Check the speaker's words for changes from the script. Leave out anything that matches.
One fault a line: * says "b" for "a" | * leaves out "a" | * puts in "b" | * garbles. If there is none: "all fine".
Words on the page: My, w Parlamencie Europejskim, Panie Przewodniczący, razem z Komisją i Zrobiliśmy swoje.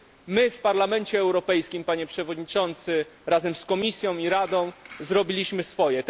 * puts in "Radą"